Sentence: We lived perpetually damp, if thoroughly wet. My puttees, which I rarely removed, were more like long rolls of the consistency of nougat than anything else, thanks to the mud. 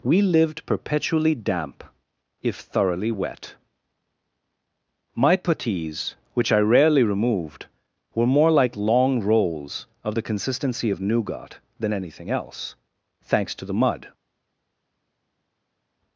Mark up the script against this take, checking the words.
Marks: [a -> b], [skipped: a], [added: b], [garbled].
We lived perpetually damp, if thoroughly wet. My puttees, which I rarely removed, were more like long rolls of the consistency of nougat than anything else, thanks to the mud.